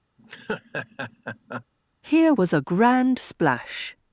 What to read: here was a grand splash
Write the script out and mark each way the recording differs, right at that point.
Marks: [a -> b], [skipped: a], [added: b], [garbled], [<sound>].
[laugh] here was a grand splash